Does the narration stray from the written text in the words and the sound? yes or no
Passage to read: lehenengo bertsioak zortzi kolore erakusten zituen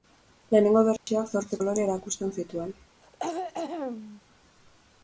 yes